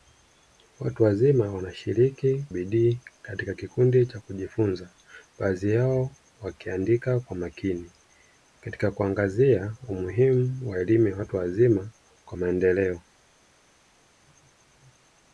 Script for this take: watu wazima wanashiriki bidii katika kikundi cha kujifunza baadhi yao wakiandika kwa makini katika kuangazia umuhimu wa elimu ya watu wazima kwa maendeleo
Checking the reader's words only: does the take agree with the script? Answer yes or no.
yes